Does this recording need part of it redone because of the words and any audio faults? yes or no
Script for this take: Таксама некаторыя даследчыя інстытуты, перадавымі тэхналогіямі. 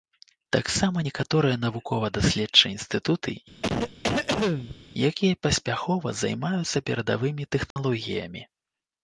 yes